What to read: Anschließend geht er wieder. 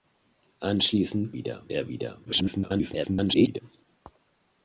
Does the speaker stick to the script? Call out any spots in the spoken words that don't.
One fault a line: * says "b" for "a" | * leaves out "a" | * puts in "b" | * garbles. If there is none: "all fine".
* says "wieder" for "geht"
* garbles